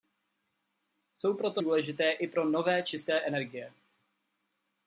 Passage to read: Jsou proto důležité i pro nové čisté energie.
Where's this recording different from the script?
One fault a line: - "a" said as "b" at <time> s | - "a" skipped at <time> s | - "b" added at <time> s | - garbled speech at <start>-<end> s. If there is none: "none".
none